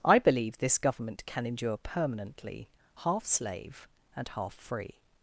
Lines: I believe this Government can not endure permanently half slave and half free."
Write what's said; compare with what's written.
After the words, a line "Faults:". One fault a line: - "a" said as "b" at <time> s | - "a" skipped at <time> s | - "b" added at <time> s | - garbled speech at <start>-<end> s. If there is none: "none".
I believe this Government can endure permanently half slave and half free."
Faults:
- "not" skipped at 1.4 s